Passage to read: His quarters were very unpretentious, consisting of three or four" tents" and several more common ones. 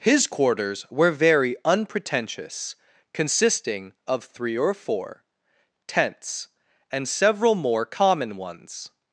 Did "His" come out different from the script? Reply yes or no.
no